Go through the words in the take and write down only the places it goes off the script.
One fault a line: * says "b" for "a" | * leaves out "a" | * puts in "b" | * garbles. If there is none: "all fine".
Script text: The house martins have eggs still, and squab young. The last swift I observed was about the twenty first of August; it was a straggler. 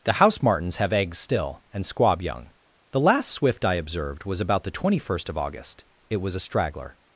all fine